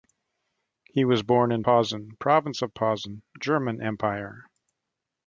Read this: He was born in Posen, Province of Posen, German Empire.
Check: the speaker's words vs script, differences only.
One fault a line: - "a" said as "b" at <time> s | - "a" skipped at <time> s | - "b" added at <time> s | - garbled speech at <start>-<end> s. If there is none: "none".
none